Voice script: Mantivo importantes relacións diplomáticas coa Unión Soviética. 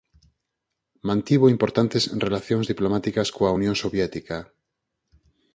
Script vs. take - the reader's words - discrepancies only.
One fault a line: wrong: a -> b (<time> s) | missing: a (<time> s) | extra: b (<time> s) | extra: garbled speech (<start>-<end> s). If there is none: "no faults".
no faults